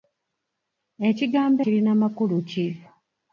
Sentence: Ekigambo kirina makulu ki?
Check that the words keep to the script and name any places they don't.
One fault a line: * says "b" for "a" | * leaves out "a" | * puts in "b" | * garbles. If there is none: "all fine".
all fine